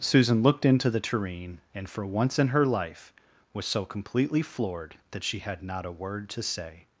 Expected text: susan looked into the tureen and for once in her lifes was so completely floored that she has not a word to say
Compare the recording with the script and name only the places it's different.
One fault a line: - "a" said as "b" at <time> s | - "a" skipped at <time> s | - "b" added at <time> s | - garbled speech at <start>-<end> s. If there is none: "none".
- "lifes" said as "life" at 2.6 s
- "has" said as "had" at 5.4 s